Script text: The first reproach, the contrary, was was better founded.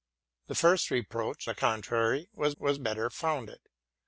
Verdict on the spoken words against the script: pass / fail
pass